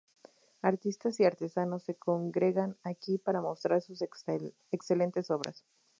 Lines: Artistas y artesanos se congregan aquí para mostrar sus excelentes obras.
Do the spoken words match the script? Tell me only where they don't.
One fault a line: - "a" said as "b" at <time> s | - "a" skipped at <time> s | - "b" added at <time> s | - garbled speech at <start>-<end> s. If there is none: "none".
none